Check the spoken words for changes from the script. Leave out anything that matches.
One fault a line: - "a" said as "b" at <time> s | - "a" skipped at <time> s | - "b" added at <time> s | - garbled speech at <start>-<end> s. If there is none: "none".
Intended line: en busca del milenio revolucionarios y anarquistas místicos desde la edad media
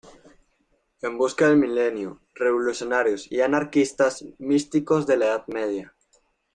- "desde" said as "de" at 5.0 s